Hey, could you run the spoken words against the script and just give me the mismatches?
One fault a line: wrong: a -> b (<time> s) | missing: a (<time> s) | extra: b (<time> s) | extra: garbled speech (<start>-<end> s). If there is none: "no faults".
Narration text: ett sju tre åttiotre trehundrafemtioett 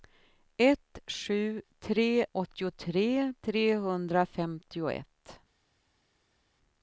no faults